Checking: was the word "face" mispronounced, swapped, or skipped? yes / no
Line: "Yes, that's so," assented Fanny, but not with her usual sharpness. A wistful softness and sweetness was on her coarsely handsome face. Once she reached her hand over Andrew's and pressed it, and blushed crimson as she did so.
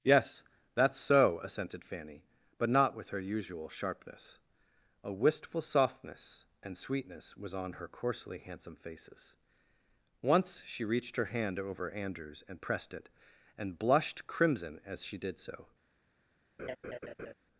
yes